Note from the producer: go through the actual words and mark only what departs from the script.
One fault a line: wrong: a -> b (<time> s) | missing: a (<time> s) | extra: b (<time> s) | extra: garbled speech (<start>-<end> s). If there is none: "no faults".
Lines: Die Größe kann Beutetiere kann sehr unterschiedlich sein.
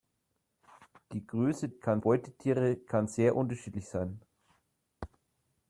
no faults